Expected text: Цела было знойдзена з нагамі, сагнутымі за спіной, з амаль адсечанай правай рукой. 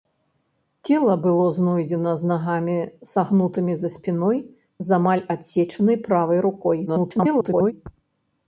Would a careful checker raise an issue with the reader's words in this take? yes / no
yes